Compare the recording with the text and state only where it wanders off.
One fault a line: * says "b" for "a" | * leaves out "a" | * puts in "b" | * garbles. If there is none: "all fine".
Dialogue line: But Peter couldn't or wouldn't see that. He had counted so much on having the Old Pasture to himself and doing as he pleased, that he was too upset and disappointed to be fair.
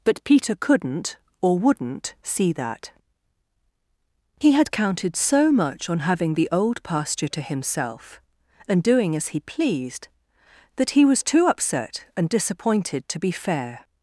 all fine